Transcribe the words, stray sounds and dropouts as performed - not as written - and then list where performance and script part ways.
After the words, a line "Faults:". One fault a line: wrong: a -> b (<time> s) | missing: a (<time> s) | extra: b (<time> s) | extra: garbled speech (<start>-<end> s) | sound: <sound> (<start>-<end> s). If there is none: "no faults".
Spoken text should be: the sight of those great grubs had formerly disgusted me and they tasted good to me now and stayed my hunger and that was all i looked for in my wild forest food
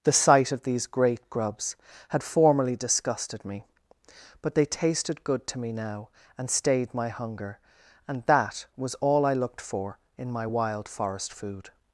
the sight of these great grubs had formerly disgusted me but they tasted good to me now and stayed my hunger and that was all i looked for in my wild forest food
Faults:
wrong: those -> these (0.6 s)
wrong: and -> but (4.4 s)